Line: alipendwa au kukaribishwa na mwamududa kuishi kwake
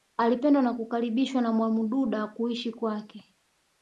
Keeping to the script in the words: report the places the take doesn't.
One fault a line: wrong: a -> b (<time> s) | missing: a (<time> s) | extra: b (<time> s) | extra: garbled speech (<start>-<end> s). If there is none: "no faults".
wrong: au -> na (0.6 s)